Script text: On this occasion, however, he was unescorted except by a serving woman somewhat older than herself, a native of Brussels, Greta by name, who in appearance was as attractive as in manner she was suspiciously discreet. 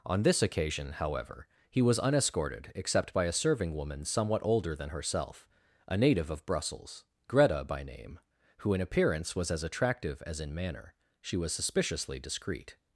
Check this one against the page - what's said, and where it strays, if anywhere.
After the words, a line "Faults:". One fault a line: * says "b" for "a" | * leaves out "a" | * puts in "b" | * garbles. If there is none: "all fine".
On this occasion, however, he was unescorted except by a serving woman somewhat older than herself, a native of Brussels, Greta by name, who in appearance was as attractive as in manner she was suspiciously discreet.
Faults:
all fine